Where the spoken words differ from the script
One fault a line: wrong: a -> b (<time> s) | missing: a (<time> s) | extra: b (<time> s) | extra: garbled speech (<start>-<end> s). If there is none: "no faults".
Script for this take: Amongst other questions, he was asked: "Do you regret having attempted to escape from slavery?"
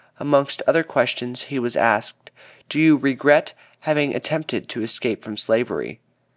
no faults